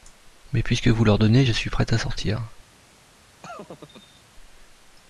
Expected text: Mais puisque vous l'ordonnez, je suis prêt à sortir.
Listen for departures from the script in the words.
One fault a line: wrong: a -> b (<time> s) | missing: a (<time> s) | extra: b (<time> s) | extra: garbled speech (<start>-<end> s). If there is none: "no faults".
no faults